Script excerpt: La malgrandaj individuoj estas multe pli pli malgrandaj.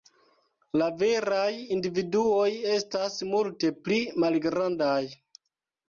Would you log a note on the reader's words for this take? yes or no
yes